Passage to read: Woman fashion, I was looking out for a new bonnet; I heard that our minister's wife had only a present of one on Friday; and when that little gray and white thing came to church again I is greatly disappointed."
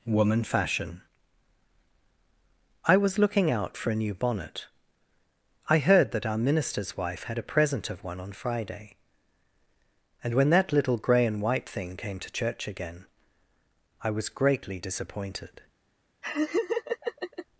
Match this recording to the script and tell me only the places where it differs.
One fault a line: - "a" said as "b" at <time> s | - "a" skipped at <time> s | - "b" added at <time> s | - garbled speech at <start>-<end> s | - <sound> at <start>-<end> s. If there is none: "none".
- "only" skipped at 7.4 s
- "is" said as "was" at 14.1 s
- laugh at 16.2-17.5 s